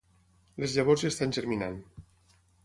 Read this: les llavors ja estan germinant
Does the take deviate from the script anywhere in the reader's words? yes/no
no